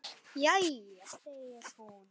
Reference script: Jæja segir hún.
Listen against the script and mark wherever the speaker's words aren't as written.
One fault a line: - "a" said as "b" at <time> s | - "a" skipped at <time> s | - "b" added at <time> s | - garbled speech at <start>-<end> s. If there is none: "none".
none